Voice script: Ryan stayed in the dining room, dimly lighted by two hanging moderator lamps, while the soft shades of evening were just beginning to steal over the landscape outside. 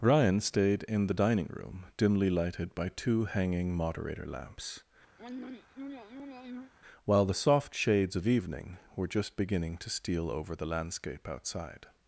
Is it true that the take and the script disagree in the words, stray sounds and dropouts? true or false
true